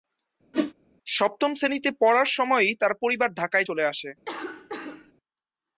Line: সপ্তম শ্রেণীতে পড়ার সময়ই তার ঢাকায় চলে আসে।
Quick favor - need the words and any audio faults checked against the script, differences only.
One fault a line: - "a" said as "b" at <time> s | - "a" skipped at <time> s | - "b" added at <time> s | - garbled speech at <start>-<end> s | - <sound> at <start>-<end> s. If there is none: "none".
- whoosh at 0.5-0.7 s
- "পরিবার" added at 3.0 s
- cough at 4.3-5.1 s